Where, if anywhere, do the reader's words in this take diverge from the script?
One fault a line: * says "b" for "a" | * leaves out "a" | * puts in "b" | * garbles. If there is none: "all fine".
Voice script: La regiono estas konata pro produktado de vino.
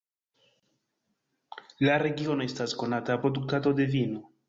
* leaves out "pro"